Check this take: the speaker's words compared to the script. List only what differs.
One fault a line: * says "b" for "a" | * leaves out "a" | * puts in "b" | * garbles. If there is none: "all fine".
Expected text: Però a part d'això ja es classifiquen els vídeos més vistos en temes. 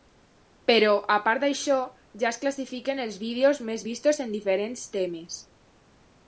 * puts in "diferents"